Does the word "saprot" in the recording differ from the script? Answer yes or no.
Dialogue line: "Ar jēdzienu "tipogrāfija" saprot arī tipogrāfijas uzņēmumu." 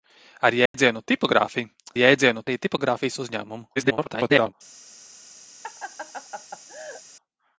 yes